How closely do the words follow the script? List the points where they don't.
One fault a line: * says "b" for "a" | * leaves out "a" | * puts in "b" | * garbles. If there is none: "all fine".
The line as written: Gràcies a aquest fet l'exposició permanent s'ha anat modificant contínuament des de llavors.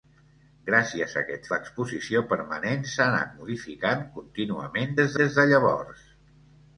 * leaves out "fet"
* puts in "des"